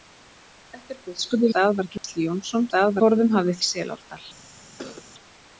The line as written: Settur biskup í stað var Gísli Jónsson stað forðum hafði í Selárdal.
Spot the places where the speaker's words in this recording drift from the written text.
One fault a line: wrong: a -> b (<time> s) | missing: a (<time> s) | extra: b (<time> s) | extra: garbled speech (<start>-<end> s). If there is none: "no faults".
no faults